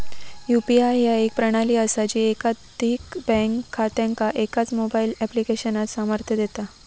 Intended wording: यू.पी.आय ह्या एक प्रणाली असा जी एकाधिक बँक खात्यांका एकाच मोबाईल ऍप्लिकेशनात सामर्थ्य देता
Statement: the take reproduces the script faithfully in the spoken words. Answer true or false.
true